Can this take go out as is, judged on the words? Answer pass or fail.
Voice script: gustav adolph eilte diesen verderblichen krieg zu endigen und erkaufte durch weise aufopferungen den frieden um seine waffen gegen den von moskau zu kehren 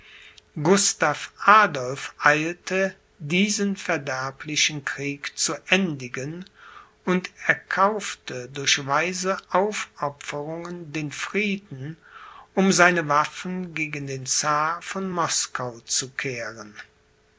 fail